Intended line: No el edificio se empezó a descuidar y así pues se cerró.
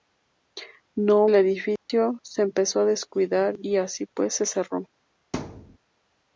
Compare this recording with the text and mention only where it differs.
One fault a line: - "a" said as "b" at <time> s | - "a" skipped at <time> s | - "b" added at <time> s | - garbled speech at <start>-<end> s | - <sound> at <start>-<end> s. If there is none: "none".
- dropout at 1.8-1.9 s
- thud at 5.3-5.8 s